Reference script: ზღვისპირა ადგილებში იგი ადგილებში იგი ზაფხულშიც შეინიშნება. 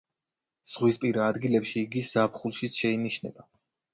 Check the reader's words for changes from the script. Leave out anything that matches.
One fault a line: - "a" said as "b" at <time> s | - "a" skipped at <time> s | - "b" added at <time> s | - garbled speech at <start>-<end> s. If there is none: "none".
- "ადგილებში იგი" skipped at 2.0 s